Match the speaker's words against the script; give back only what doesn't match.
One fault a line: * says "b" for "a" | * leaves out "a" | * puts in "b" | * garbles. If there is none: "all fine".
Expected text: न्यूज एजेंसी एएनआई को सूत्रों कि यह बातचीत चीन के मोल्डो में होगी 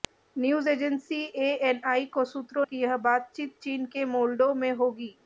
all fine